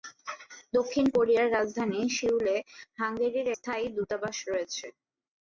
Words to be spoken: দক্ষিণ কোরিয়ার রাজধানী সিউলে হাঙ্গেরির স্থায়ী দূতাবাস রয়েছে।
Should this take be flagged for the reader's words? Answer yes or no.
no